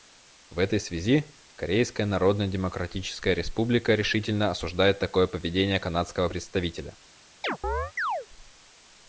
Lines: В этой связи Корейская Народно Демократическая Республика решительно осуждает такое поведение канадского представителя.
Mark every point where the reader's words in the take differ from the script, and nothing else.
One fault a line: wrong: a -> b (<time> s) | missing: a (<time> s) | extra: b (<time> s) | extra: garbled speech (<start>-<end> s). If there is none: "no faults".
no faults